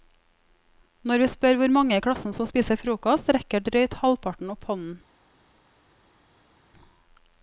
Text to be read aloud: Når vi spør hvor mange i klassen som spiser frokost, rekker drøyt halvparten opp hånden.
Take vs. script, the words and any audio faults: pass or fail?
pass